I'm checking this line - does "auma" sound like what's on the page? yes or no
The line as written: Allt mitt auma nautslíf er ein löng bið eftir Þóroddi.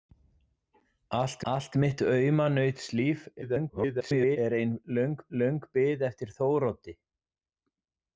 yes